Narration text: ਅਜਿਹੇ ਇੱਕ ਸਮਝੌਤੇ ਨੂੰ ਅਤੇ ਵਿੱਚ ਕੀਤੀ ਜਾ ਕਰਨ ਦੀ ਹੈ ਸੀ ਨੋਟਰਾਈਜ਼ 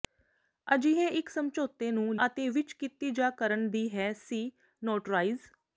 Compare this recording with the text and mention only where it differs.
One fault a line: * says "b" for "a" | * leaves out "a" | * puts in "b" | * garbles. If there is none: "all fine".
all fine